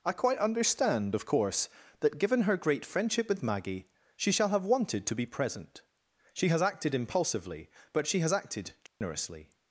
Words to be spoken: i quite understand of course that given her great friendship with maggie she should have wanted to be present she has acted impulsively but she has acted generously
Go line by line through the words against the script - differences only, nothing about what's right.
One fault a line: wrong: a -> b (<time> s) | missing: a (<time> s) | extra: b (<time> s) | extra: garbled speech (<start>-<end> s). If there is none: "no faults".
wrong: should -> shall (4.3 s)